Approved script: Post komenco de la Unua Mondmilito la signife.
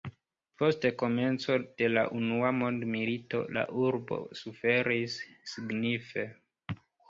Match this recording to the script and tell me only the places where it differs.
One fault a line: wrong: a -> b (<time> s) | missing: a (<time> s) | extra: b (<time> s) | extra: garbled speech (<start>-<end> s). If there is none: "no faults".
extra: urbo suferis (3.9 s)